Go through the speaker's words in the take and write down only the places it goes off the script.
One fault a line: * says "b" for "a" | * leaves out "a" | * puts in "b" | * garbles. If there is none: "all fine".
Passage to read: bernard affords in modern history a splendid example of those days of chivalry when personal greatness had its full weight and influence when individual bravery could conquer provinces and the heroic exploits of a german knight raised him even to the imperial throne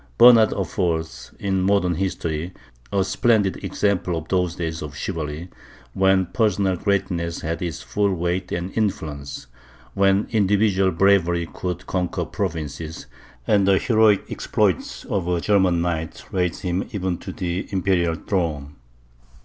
all fine